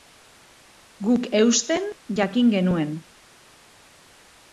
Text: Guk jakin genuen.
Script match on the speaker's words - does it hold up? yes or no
no